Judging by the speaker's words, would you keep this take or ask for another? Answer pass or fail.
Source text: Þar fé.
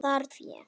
pass